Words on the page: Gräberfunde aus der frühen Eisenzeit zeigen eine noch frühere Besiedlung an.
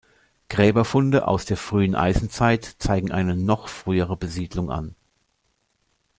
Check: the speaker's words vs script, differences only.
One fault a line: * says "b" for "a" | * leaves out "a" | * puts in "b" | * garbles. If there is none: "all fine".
all fine